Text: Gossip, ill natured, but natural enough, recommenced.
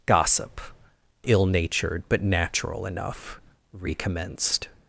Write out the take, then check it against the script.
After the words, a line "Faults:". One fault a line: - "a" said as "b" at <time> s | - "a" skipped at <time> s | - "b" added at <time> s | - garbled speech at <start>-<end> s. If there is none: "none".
Gossip, ill natured, but natural enough, recommenced.
Faults:
none